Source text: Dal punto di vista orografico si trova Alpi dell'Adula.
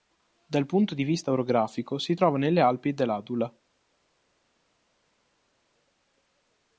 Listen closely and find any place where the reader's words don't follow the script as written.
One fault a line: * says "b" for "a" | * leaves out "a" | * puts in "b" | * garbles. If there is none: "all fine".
* puts in "nelle"